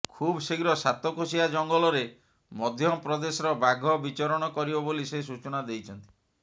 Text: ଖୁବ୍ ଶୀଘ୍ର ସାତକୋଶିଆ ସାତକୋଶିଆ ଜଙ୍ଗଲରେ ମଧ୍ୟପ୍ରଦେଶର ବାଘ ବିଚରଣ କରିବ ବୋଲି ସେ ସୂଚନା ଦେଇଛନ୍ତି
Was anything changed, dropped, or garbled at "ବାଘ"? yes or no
no